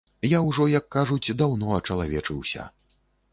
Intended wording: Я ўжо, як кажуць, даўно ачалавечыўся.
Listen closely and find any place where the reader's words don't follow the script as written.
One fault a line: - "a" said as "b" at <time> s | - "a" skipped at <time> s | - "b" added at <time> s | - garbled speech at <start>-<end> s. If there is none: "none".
none